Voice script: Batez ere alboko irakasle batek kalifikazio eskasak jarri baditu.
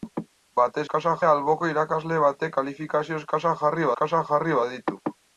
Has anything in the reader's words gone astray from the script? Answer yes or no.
yes